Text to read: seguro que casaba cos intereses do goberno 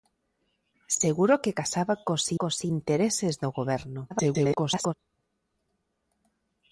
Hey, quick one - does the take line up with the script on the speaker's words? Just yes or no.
no